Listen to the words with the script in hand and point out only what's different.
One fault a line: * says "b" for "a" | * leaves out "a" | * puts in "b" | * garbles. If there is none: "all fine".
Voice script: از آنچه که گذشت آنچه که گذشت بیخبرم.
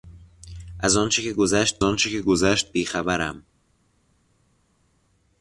all fine